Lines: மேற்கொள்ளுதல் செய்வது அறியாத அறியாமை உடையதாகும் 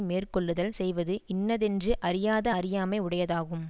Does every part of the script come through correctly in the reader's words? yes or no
no